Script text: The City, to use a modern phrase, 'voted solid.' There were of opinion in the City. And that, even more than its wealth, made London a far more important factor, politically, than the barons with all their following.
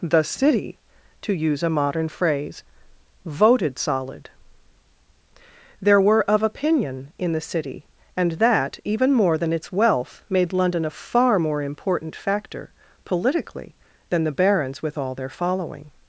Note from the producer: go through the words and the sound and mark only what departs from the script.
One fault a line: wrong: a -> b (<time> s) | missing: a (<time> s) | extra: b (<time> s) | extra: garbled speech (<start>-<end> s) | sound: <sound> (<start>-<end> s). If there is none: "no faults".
no faults